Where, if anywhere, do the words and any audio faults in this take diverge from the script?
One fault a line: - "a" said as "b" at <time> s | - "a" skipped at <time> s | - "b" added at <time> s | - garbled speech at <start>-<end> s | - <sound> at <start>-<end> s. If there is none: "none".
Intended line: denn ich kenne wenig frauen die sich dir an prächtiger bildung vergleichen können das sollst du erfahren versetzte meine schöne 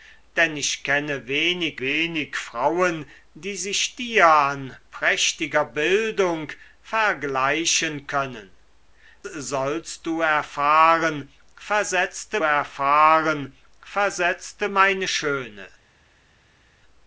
- "wenig" added at 1.8 s
- "das" skipped at 8.6 s
- "erfahren versetzte" added at 12.4 s